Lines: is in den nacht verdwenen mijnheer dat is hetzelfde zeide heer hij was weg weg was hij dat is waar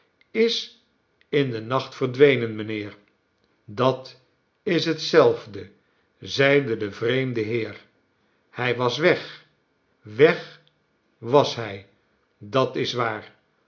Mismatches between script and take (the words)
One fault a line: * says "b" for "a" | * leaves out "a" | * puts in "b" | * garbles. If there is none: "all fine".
* puts in "de vreemde"